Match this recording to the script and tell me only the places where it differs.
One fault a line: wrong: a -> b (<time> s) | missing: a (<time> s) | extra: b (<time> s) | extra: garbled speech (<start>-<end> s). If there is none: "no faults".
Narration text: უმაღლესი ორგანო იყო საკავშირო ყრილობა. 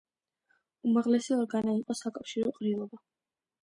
no faults